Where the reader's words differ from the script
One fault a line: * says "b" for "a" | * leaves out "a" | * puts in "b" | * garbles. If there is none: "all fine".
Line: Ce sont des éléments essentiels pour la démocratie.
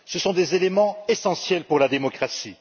all fine